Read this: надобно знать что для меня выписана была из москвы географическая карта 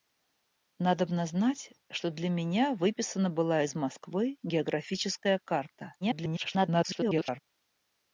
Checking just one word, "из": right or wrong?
right